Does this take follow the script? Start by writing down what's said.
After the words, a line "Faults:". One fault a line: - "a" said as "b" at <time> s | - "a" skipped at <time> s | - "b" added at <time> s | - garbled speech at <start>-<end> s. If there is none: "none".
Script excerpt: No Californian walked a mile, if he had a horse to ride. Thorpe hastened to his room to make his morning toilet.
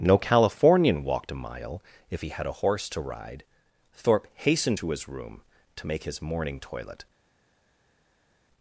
No Californian walked a mile, if he had a horse to ride. Thorpe hastened to his room to make his morning toilet.
Faults:
none